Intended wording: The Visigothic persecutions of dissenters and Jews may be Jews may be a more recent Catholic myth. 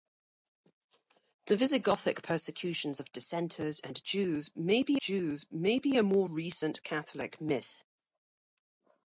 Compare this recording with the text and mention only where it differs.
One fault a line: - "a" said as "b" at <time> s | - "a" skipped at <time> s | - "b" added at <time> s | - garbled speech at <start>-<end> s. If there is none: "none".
none